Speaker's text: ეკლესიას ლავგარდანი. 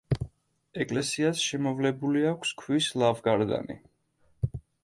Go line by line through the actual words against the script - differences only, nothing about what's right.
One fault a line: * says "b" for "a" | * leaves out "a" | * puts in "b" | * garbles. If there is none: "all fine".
* puts in "შემოვლებული აქვს ქვის"